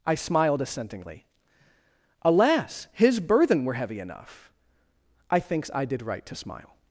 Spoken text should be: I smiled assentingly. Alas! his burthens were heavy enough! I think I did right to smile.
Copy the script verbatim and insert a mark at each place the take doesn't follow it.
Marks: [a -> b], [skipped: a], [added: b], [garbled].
I smiled assentingly. Alas! his [burthens -> burthen] were heavy enough! I [think -> thinks] I did right to smile.